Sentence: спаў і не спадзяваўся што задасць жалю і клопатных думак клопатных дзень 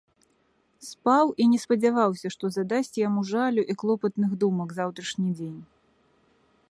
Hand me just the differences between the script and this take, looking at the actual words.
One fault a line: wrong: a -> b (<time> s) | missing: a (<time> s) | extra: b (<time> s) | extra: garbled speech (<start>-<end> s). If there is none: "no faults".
extra: яму (3.1 s)
wrong: клопатных -> заўтрашні (4.8 s)